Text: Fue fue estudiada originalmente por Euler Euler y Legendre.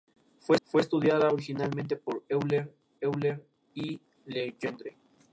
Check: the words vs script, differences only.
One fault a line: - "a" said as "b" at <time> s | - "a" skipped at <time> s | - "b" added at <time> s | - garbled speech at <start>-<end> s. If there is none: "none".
none